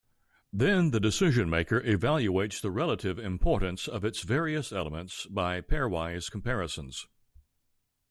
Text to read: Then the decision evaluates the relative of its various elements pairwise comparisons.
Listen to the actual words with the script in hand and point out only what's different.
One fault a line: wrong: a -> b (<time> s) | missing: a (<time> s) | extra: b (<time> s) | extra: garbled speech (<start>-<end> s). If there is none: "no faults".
extra: maker (1.5 s)
extra: importance (3.2 s)
extra: by (5.3 s)